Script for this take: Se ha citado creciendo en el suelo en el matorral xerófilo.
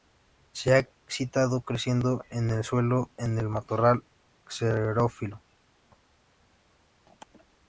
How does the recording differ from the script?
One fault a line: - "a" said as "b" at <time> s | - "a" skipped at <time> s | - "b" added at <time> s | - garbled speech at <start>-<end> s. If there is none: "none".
none